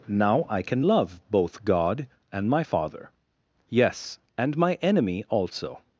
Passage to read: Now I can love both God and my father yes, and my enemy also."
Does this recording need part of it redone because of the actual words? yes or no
no